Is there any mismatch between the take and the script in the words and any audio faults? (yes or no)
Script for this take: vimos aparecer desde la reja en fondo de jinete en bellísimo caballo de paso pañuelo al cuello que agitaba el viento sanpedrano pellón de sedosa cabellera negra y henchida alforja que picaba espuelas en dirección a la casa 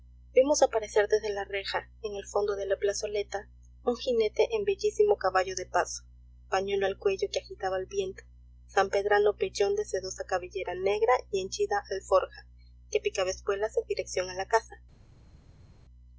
yes